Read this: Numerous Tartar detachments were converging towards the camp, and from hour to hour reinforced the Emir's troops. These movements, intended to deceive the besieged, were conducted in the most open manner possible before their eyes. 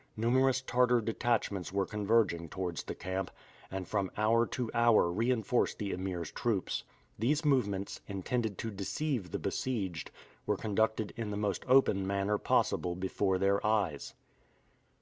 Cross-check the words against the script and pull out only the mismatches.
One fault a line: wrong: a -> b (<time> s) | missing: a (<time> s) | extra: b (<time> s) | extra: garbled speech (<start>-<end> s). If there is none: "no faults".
no faults